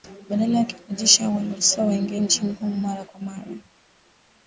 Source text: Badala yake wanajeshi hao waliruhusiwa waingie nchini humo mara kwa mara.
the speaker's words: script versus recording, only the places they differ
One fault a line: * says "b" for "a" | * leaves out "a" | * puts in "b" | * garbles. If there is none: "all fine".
all fine